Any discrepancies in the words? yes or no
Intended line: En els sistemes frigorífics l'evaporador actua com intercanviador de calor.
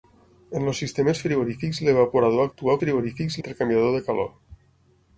yes